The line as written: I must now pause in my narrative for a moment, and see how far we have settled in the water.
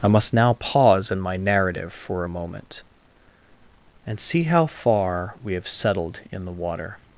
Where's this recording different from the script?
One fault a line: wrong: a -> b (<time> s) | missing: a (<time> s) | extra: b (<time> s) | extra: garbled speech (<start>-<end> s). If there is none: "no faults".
no faults